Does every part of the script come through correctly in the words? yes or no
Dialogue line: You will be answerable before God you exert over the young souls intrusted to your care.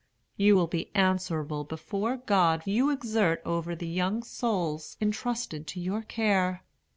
yes